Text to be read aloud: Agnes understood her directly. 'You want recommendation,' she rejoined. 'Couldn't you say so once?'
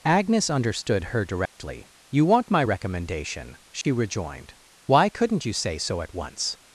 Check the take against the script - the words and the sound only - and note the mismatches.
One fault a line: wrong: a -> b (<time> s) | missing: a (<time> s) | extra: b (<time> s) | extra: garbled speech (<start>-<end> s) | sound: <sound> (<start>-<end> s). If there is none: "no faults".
sound: dropout (1.5-1.6 s)
extra: my (2.5 s)
sound: dropout (3.8-3.8 s)
extra: Why (4.9 s)
extra: at (6.0 s)